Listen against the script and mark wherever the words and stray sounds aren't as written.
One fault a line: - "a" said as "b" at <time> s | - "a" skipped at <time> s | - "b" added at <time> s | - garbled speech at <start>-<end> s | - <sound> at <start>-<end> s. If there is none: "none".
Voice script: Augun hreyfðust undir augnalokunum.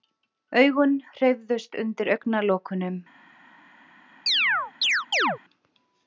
- chirp at 4.3-5.4 s